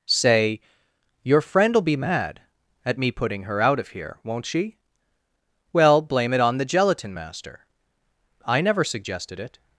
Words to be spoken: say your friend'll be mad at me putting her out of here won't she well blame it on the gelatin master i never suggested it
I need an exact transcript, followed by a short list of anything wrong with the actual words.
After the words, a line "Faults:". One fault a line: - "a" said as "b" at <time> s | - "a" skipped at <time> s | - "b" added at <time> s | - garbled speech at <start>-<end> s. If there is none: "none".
say your friend'll be mad at me putting her out of here won't she well blame it on the gelatin master i never suggested it
Faults:
none